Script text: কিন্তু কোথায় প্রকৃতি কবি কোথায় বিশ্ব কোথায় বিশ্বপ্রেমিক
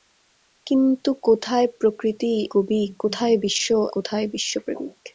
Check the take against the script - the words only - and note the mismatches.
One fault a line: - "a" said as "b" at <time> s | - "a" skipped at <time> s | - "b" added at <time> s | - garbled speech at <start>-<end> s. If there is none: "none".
none